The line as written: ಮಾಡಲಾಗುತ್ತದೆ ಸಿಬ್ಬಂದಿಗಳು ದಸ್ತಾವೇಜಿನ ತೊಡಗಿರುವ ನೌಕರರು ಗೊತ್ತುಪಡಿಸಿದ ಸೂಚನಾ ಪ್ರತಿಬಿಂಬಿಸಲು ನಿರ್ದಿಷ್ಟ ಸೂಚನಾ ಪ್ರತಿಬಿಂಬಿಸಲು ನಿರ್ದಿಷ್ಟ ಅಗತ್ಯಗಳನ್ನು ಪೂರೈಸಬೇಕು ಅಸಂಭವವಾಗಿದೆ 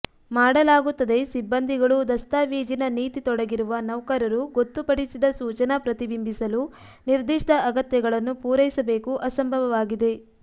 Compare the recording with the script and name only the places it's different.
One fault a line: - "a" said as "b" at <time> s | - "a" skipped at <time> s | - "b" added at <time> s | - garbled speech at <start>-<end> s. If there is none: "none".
- "ನೀತಿ" added at 3.0 s
- "ಸೂಚನಾ ಪ್ರತಿಬಿಂಬಿಸಲು ನಿರ್ದಿಷ್ಟ" skipped at 7.5 s